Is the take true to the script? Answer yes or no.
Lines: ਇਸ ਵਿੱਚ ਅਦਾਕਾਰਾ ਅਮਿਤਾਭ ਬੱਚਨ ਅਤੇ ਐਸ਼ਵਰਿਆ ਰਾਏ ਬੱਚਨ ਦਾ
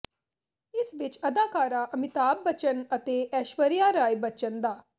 yes